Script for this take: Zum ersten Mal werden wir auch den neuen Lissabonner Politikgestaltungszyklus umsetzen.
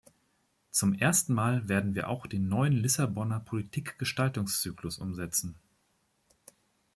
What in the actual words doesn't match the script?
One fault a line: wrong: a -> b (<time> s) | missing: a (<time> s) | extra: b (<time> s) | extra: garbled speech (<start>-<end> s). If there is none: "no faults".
no faults